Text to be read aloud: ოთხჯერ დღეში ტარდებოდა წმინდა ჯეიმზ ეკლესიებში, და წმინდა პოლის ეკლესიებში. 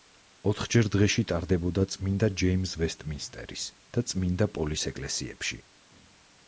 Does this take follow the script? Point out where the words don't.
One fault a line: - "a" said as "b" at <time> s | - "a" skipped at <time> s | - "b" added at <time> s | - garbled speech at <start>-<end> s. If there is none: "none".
- "ეკლესიებში" said as "ვესტმინსტერის" at 2.8 s